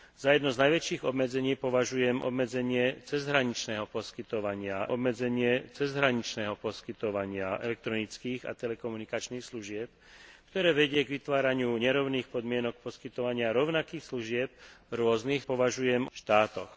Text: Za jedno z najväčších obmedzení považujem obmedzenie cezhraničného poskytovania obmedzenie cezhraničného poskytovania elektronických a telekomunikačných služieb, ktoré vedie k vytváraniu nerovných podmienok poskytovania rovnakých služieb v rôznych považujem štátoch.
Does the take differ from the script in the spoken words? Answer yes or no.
no